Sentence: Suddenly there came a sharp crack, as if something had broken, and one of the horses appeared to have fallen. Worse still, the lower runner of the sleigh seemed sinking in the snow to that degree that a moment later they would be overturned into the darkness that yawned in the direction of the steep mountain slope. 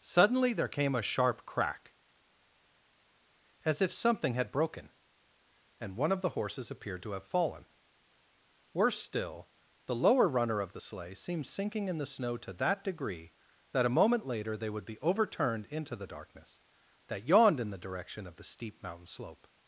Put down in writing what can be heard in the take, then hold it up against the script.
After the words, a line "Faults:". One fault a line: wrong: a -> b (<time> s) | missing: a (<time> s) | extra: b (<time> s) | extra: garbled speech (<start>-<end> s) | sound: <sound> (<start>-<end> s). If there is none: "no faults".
Suddenly there came a sharp crack, as if something had broken, and one of the horses appeared to have fallen. Worse still, the lower runner of the sleigh seemed sinking in the snow to that degree that a moment later they would be overturned into the darkness that yawned in the direction of the steep mountain slope.
Faults:
no faults